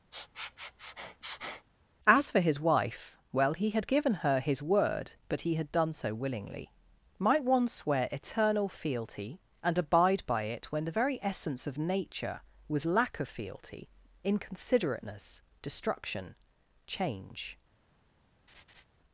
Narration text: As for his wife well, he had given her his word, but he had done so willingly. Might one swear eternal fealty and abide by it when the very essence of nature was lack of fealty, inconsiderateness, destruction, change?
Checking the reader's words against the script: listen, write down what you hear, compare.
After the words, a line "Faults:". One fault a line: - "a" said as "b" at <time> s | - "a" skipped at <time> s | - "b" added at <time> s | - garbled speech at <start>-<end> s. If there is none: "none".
As for his wife well, he had given her his word, but he had done so willingly. Might one swear eternal fealty and abide by it when the very essence of nature was lack of fealty, inconsiderateness, destruction, change?
Faults:
none